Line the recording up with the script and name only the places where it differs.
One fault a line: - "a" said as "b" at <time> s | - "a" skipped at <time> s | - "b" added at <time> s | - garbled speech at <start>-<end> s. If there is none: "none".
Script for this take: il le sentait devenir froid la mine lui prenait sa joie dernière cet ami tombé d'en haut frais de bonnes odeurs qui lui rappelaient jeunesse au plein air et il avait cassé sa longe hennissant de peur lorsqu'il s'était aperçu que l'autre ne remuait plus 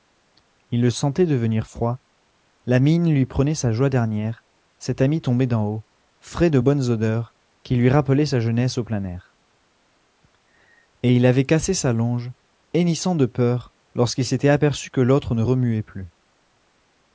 - "sa" added at 8.2 s